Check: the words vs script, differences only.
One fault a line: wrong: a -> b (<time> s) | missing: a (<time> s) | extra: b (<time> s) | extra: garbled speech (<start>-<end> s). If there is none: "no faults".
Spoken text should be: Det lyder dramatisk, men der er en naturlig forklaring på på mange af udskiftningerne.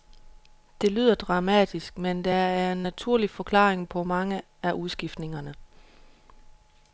missing: på (4.0 s)